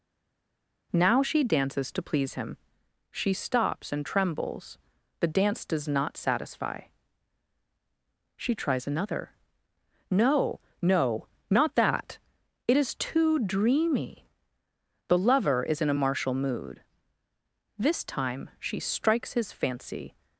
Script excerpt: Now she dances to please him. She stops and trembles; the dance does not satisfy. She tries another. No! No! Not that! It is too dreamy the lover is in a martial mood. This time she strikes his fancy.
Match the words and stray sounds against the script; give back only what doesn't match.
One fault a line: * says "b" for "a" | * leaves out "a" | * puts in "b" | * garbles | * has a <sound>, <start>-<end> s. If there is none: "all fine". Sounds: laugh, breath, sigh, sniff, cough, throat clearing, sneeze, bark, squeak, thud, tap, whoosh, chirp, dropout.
all fine